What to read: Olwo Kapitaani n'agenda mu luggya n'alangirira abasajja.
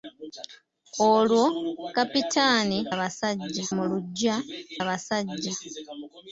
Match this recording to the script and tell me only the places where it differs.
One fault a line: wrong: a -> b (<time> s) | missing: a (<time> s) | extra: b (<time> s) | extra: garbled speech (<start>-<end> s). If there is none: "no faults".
wrong: n'agenda -> abasajja (2.9 s)
missing: n'alangirira (4.4 s)